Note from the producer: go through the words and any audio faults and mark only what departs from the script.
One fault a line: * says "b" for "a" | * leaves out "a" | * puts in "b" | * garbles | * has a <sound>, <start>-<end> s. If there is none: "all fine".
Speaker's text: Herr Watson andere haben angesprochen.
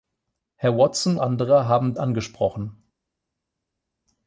all fine